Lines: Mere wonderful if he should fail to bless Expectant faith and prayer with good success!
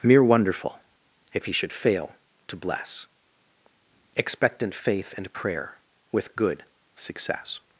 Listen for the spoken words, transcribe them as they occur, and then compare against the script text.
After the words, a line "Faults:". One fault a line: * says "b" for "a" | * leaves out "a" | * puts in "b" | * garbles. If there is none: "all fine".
Mere wonderful if he should fail to bless Expectant faith and prayer with good success!
Faults:
all fine